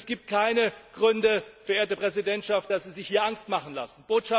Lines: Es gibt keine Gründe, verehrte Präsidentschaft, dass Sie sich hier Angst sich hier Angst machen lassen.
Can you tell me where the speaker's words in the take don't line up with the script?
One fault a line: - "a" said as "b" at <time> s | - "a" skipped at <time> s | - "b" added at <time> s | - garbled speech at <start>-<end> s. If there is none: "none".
- "sich hier Angst" skipped at 3.5 s